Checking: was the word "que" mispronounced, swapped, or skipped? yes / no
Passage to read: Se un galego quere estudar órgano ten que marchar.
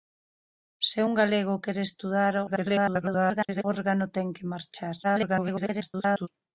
no